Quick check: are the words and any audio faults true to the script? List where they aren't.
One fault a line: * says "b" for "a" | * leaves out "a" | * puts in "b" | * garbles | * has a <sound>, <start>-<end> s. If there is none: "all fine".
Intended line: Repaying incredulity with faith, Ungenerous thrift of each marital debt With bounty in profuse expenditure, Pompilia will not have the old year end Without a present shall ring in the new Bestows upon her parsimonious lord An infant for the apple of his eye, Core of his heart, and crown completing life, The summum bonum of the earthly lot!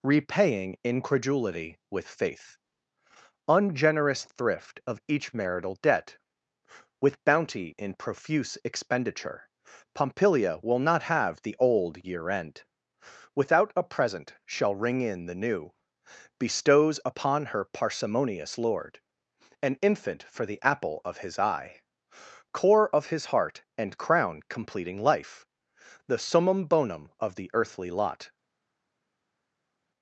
all fine